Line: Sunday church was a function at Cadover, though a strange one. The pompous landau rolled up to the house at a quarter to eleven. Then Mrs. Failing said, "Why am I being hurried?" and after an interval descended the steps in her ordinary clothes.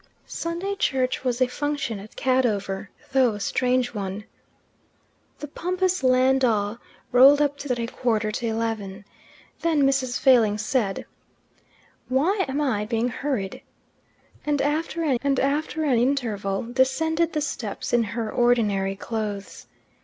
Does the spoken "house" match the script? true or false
false